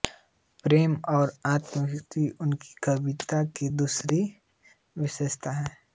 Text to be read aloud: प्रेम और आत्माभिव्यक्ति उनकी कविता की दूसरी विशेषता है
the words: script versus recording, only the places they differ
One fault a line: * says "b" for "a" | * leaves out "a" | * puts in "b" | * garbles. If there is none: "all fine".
all fine